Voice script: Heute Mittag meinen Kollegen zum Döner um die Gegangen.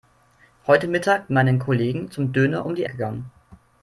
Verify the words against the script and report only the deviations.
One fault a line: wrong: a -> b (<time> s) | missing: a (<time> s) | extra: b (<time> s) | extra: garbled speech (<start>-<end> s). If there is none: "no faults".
no faults